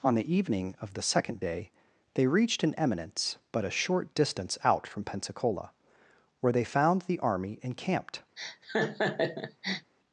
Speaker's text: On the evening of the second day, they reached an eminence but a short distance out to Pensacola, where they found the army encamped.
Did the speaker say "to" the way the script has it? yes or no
no